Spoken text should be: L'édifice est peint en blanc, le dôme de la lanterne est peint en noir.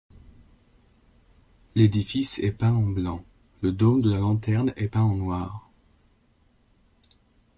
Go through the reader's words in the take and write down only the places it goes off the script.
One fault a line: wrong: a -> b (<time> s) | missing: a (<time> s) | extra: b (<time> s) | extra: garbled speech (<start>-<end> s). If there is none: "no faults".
no faults